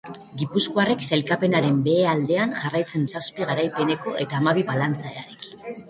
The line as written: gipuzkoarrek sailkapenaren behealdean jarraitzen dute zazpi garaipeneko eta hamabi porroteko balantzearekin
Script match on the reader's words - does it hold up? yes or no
no